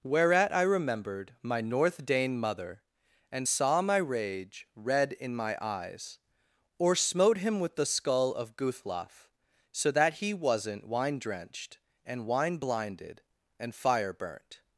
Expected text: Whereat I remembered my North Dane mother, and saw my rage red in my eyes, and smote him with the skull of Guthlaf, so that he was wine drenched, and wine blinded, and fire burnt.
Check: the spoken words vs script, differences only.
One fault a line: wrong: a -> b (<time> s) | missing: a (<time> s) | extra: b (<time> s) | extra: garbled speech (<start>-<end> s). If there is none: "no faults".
wrong: and -> or (6.8 s)
wrong: was -> wasn't (10.3 s)